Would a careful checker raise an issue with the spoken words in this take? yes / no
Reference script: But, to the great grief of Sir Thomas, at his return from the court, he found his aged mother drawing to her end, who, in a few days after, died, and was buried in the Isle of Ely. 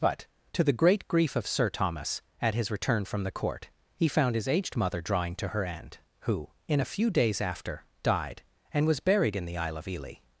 no